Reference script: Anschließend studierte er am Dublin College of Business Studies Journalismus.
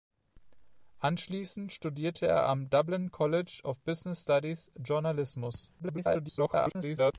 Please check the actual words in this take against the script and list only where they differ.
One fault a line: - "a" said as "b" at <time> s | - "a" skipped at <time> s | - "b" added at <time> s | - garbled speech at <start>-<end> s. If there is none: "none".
- garbled speech at 5.8-7.1 s